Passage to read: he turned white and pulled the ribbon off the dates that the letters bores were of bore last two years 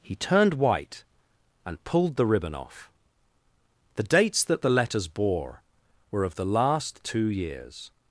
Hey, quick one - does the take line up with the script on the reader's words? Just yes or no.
no